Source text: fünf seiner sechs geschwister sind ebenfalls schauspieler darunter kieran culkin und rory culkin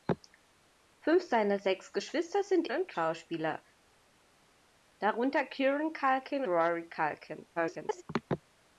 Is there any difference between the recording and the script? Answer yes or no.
yes